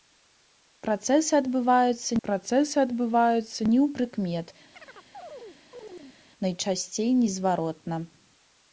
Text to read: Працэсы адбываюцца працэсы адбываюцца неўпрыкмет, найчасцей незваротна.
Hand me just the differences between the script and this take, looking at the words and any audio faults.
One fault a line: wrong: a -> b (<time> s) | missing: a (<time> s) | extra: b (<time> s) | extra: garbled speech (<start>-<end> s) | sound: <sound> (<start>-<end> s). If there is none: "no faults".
sound: chirp (4.7-6.2 s)